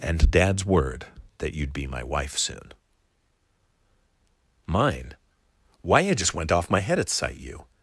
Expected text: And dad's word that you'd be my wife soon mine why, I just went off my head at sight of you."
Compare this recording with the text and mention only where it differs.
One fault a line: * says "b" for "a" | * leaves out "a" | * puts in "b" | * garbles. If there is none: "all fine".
* leaves out "of"